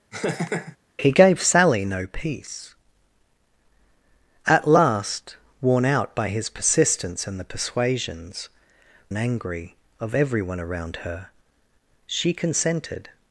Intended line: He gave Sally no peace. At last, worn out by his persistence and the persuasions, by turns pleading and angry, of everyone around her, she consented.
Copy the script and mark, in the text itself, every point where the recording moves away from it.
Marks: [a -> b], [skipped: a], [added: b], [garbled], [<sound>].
[laugh] He gave Sally no peace. At last, worn out by his persistence and the persuasions, [skipped: by turns pleading] and angry, of everyone around her, she consented.